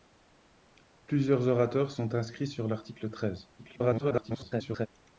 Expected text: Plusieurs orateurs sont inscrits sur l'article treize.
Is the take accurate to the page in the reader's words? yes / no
no